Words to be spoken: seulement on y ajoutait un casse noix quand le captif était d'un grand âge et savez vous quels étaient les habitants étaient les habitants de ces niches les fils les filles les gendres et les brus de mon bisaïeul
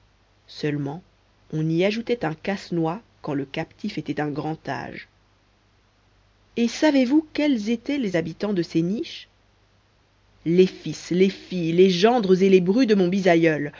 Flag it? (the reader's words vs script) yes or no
yes